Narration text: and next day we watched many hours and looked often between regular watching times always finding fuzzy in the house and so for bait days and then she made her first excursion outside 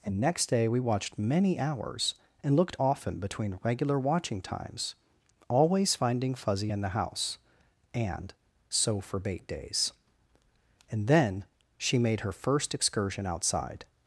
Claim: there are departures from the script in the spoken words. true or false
false